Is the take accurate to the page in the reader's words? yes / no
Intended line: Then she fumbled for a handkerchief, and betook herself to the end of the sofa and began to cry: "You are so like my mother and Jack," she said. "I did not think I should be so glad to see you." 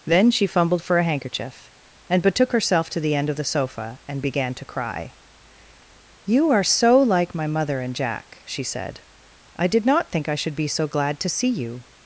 yes